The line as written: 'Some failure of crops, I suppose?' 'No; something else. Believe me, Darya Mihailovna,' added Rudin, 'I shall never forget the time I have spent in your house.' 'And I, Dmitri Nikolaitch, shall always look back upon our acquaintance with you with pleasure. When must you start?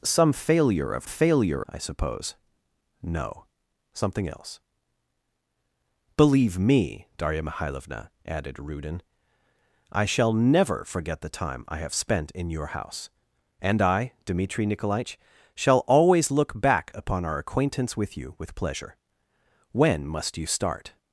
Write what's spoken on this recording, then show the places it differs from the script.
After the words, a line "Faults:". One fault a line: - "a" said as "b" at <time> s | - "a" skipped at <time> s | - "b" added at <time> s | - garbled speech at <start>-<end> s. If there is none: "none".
'Some failure of failure, I suppose?' 'No; something else. Believe me, Darya Mihailovna,' added Rudin, 'I shall never forget the time I have spent in your house.' 'And I, Dmitri Nikolaitch, shall always look back upon our acquaintance with you with pleasure. When must you start?
Faults:
- "crops" said as "failure" at 1.1 s